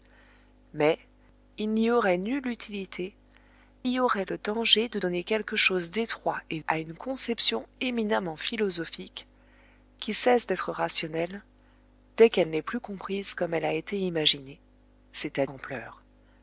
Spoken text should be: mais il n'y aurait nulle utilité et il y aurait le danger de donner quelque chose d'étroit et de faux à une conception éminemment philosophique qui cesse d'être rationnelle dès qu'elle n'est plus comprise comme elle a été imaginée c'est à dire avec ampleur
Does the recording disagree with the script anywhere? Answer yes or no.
yes